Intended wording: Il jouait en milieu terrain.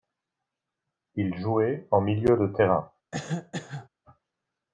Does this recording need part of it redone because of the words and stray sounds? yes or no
yes